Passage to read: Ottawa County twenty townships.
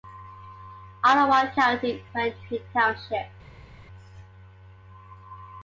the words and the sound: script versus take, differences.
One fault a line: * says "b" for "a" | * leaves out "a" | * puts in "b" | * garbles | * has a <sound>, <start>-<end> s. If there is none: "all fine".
all fine